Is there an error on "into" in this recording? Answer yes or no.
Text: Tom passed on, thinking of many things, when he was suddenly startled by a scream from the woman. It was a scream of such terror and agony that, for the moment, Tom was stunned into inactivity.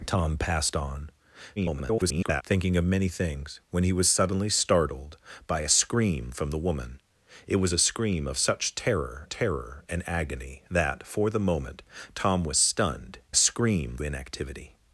yes